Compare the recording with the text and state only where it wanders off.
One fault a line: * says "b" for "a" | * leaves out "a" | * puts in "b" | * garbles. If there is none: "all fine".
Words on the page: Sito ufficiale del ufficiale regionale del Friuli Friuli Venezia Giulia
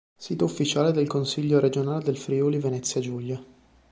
* says "consiglio" for "ufficiale"
* leaves out "Friuli"